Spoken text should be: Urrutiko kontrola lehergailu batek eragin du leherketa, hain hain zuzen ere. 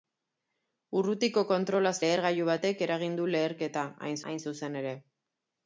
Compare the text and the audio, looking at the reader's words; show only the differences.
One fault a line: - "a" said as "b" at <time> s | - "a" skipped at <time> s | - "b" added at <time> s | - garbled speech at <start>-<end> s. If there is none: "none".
none